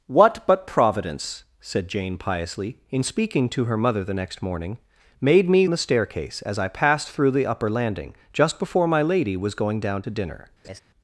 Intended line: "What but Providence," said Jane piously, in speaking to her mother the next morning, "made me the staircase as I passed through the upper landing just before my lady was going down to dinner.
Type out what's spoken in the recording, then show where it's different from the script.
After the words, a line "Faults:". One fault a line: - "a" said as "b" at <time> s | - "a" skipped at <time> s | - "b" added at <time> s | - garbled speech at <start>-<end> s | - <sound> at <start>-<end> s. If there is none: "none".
"What but Providence," said Jane piously, in speaking to her mother the next morning, "made me the staircase as I passed through the upper landing just before my lady was going down to dinner.
Faults:
- laugh at 10.6-10.8 s